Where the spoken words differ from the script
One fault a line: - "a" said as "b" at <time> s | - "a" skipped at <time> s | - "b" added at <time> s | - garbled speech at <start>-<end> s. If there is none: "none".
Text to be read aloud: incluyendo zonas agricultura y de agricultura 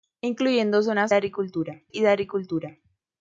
none